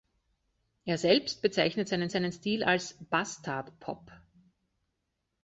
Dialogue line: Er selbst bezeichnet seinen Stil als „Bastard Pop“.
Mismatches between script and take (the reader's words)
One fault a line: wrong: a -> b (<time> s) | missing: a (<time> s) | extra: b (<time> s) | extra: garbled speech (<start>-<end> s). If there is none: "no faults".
extra: seinen (2.1 s)